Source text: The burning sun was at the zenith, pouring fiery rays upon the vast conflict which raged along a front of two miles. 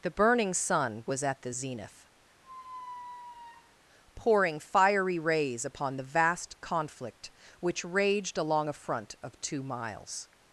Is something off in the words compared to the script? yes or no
no